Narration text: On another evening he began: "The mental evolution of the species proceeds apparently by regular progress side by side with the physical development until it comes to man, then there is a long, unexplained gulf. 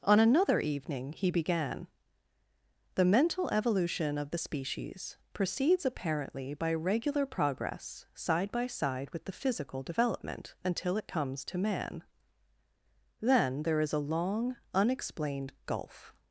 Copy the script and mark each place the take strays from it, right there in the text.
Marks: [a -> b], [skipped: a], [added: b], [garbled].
On another evening he began: "The mental evolution of the species proceeds apparently by regular progress side by side with the physical development until it comes to man, then there is a long, unexplained gulf.